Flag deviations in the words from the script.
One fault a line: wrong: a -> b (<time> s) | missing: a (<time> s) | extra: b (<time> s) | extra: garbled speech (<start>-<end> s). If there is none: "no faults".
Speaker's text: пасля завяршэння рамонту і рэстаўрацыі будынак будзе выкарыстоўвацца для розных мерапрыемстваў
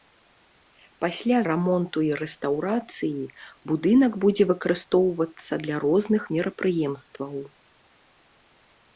missing: завяршэння (1.4 s)